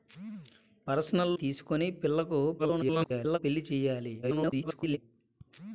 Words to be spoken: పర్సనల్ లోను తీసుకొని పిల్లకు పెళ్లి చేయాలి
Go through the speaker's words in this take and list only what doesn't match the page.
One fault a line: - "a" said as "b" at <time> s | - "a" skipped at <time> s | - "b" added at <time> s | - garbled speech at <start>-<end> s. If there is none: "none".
- "లోను" skipped at 1.3 s
- garbled speech at 2.6-3.4 s
- garbled speech at 4.2-5.0 s